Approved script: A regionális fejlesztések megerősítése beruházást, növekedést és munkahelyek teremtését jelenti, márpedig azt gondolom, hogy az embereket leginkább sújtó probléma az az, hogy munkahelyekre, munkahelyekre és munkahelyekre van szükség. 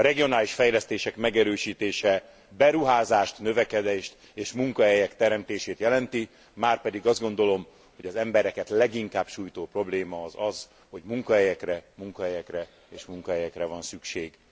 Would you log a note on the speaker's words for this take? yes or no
no